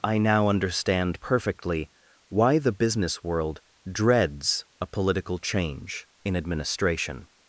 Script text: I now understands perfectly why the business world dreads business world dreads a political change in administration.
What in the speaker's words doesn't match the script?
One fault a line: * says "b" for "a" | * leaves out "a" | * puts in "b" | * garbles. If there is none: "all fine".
* says "understand" for "understands"
* leaves out "business world dreads"